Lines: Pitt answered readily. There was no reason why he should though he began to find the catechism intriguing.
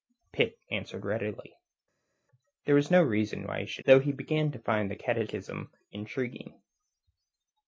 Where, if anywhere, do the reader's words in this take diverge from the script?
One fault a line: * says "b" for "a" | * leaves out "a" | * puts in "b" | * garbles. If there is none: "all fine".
all fine